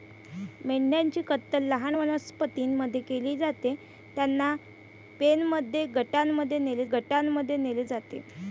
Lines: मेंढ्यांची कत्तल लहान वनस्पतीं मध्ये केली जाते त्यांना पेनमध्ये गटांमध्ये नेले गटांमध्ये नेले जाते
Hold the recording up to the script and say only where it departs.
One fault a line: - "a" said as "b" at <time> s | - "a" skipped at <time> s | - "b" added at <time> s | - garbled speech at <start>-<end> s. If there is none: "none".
none